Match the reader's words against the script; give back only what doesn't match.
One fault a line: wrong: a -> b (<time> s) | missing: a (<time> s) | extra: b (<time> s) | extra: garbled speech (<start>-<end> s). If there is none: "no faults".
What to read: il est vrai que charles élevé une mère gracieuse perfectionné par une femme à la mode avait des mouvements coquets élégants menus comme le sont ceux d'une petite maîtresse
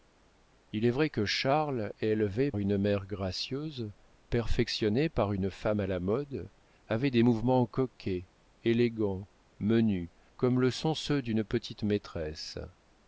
no faults